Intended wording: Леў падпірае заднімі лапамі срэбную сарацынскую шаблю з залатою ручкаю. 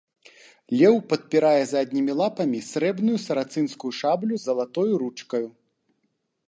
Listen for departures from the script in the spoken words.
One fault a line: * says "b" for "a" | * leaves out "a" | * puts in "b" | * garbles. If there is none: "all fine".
all fine